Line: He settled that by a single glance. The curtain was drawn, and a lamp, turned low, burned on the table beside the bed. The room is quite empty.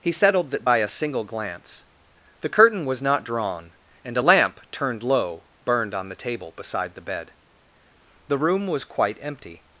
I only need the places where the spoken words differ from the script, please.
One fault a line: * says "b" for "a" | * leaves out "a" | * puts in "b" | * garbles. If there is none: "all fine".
* puts in "not"
* says "was" for "is"